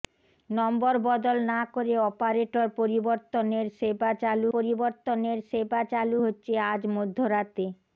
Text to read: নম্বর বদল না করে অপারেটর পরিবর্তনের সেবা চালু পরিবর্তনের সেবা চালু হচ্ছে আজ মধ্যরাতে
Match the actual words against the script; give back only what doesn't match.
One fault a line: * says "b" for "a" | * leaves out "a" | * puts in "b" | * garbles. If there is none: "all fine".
all fine